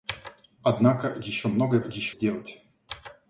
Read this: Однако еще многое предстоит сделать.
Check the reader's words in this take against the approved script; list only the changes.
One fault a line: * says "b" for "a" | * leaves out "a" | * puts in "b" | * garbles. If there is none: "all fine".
* says "еще" for "предстоит"